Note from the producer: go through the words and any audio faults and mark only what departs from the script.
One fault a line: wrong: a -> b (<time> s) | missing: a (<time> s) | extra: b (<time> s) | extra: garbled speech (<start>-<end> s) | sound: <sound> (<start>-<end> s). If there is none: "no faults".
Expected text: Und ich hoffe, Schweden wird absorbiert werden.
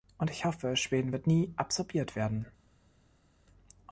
extra: nie (1.2 s)